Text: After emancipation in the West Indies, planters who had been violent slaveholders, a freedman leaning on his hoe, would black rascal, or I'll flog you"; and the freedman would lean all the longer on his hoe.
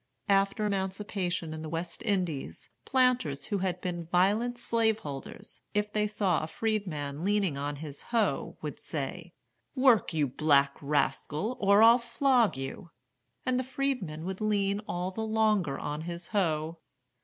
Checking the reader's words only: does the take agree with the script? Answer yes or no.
no